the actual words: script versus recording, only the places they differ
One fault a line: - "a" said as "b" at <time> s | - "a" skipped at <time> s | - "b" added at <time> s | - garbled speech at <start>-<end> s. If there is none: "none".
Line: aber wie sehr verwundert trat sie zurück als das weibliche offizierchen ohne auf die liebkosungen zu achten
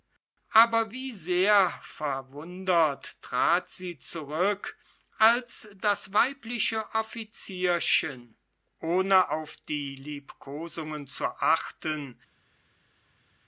none